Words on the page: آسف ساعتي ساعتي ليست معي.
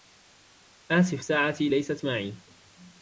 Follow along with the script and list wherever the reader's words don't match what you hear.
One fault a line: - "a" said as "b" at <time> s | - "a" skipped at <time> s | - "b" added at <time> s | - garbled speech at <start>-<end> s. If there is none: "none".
- "ساعتي" skipped at 1.7 s